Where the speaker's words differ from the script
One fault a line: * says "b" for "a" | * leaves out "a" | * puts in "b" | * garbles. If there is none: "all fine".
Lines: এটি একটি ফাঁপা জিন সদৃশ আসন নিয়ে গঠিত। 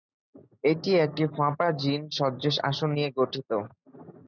all fine